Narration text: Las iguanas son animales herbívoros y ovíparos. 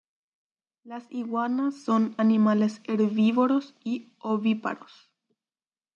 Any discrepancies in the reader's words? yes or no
no